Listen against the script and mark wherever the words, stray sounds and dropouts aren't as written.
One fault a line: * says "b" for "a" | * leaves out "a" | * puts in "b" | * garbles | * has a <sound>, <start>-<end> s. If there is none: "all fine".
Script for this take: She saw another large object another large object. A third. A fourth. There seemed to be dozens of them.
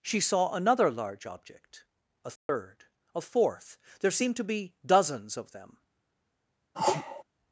* leaves out "another large object"
* has a dropout, 2.4-2.5 s
* has a sneeze, 6.7-7.2 s